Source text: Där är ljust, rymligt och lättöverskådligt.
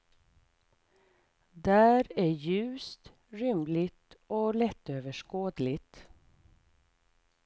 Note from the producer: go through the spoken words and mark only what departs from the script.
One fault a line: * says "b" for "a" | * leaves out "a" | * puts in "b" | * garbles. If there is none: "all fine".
all fine